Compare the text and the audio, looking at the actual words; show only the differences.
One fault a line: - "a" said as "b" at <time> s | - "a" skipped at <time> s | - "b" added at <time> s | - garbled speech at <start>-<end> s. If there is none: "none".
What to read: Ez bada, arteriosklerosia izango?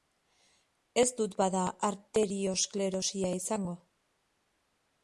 - "dut" added at 1.2 s